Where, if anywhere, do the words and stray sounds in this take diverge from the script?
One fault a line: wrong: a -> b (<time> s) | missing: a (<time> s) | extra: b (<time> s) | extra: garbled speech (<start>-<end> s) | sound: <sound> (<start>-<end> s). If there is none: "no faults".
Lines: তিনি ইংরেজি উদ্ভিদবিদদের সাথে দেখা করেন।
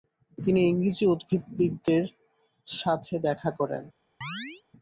sound: chirp (4.2-4.6 s)